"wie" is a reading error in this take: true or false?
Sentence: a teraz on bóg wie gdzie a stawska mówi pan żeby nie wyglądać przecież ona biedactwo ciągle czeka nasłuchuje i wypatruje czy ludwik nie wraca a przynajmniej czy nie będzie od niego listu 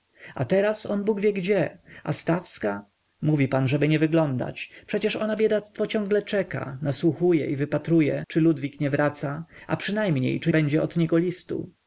false